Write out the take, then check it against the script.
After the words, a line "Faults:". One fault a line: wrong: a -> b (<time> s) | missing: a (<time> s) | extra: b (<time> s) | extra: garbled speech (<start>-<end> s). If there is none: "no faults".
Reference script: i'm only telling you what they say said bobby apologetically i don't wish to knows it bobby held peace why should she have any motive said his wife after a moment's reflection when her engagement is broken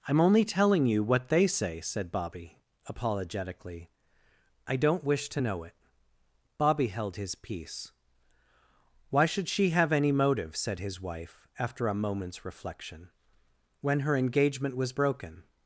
i'm only telling you what they say said bobby apologetically i don't wish to know it bobby held his peace why should she have any motive said his wife after a moment's reflection when her engagement was broken
Faults:
wrong: knows -> know (5.4 s)
extra: his (7.2 s)
wrong: is -> was (14.8 s)